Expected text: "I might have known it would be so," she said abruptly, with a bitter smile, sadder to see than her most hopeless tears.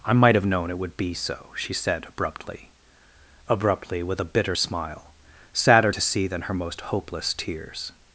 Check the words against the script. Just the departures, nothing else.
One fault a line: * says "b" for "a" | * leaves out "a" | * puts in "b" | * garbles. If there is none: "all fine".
* puts in "abruptly"